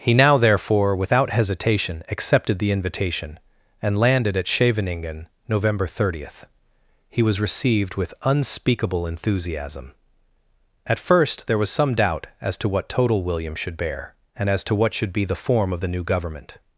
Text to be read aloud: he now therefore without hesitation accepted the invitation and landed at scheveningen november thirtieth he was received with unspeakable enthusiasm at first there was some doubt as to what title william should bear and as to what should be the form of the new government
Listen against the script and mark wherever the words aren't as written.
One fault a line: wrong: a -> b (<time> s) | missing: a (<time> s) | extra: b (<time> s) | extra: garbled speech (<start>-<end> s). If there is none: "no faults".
wrong: title -> total (12.9 s)